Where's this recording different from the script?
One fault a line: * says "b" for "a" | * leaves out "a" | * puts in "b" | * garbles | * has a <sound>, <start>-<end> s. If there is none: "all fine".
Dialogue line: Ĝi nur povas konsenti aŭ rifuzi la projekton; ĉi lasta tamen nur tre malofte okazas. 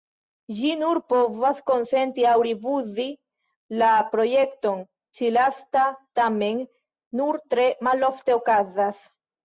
all fine